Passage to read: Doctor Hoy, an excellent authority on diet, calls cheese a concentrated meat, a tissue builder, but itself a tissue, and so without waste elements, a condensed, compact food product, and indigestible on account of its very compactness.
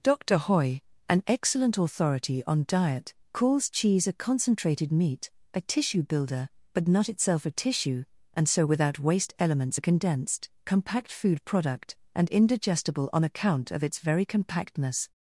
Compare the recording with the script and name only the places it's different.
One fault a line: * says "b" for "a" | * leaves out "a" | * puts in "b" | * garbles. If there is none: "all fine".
* puts in "not"